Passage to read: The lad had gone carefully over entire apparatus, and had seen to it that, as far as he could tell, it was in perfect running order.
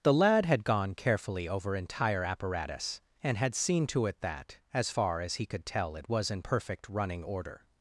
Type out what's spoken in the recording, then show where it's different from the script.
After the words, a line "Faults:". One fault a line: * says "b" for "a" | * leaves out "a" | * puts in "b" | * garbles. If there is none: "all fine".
The lad had gone carefully over entire apparatus, and had seen to it that, as far as he could tell, it was in perfect running order.
Faults:
all fine